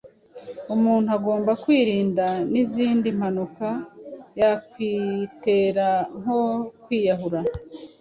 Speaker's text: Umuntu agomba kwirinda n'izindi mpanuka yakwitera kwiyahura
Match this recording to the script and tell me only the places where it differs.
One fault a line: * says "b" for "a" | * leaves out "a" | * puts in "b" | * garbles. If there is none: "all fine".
* puts in "nko"